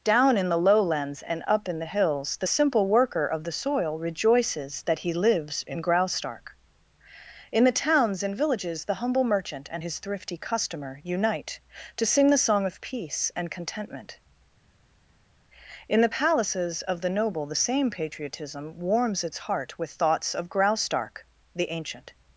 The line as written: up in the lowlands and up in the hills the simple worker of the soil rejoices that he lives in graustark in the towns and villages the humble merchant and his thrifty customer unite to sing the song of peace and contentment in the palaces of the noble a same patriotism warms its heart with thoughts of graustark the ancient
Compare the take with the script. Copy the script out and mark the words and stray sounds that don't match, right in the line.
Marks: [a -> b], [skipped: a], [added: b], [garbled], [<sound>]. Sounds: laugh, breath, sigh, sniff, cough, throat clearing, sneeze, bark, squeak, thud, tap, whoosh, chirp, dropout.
[up -> down] in the lowlands and up in the hills the simple worker of the soil rejoices that he lives in graustark in the towns and villages the humble merchant and his thrifty customer unite to sing the song of peace and contentment in the palaces of the noble [a -> the] same patriotism warms its heart with thoughts of graustark the ancient